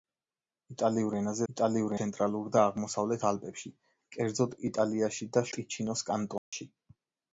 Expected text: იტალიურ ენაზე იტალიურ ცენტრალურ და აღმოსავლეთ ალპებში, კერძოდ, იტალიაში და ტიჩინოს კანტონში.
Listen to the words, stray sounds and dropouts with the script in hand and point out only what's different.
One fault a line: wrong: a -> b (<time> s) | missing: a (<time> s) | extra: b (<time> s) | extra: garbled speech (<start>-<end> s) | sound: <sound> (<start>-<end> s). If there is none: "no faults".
sound: dropout (6.4-6.5 s)